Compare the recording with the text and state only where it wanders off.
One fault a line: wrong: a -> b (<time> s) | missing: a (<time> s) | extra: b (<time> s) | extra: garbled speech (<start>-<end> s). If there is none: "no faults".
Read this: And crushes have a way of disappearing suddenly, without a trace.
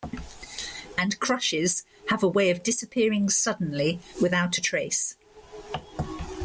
no faults